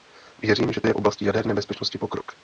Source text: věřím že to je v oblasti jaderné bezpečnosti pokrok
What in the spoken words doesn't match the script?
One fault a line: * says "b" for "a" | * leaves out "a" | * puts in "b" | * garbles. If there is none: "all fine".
* leaves out "to"